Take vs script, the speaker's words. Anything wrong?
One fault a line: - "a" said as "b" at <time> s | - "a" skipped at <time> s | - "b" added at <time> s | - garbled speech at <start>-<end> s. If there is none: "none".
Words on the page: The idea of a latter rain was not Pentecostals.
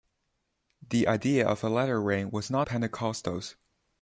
none